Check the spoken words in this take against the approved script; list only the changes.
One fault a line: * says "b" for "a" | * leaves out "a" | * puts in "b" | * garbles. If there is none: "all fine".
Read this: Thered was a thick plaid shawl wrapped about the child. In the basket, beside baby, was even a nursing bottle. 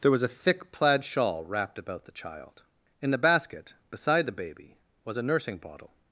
* says "There" for "Thered"
* puts in "the"
* leaves out "even"